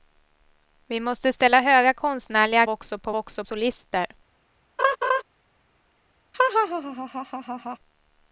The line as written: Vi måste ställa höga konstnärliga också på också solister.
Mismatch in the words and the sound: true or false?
true